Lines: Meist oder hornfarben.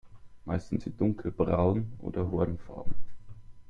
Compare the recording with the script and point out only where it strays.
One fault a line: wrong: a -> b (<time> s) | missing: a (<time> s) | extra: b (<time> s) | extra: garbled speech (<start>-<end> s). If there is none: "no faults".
extra: sind sie dunkelbraun (0.7 s)